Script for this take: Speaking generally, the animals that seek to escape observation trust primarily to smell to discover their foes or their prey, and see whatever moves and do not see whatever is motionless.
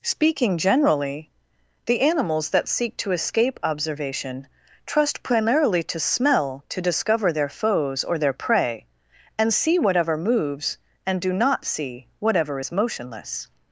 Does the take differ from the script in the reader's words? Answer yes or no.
no